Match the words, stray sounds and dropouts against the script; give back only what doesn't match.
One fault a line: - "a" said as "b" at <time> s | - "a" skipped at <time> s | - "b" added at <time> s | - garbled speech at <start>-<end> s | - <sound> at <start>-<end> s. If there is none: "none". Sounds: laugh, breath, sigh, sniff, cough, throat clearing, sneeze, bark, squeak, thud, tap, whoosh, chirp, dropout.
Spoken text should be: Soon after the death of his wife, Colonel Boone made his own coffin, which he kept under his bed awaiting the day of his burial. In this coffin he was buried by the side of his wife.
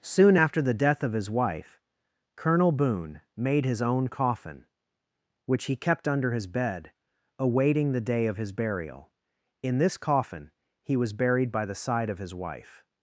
none